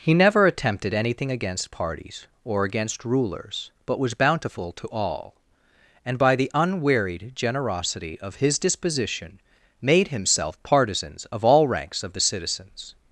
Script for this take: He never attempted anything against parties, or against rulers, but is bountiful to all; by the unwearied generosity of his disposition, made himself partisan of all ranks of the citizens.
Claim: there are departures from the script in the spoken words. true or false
true